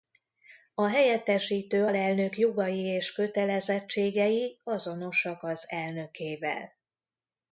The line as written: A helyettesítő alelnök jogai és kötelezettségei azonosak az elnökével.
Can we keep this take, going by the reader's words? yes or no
yes